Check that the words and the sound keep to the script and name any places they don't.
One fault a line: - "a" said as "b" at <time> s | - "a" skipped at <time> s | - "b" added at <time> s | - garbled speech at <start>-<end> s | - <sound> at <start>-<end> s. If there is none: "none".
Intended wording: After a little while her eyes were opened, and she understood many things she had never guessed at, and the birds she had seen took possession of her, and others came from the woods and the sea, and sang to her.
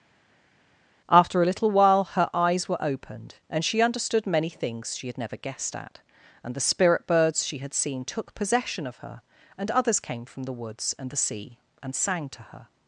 - "spirit" added at 6.6 s